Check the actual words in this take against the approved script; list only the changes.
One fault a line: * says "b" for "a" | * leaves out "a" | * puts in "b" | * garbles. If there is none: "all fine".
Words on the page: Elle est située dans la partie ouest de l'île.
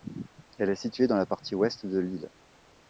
all fine